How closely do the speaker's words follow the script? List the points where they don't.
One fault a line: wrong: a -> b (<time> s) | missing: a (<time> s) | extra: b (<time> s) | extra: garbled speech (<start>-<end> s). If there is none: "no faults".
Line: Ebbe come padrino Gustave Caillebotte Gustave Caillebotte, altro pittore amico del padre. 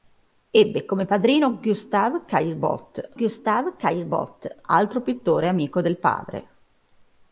no faults